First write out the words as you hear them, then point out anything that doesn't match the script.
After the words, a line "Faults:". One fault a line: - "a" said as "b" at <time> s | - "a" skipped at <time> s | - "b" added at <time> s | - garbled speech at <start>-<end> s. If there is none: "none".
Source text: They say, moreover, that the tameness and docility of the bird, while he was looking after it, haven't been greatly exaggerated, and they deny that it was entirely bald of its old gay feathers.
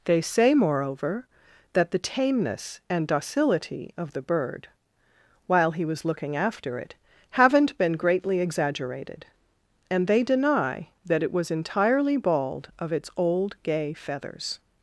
They say, moreover, that the tameness and docility of the bird, while he was looking after it, haven't been greatly exaggerated, and they deny that it was entirely bald of its old gay feathers.
Faults:
none